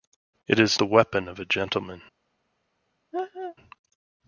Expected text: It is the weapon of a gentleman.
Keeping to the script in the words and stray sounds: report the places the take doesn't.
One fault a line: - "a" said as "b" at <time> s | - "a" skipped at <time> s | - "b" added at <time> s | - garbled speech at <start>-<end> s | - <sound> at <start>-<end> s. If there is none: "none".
- laugh at 3.1-3.6 s